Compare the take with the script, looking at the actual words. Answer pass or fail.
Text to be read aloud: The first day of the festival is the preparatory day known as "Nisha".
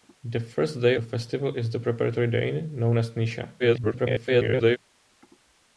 fail